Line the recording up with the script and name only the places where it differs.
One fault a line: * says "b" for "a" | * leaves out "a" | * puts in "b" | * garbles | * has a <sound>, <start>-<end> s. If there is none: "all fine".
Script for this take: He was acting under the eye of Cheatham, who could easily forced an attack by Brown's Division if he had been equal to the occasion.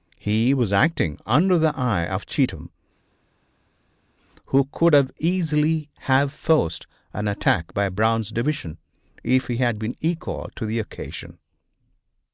* puts in "have"